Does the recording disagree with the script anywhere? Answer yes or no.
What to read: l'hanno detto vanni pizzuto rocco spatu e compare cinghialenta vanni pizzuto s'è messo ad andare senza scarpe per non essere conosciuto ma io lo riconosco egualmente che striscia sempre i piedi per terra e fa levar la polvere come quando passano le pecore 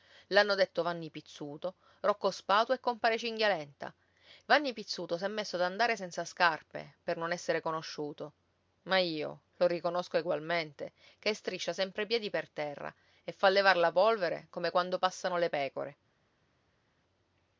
no